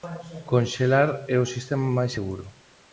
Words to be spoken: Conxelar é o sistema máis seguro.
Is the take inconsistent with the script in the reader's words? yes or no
no